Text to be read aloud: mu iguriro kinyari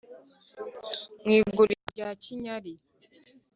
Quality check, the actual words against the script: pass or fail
fail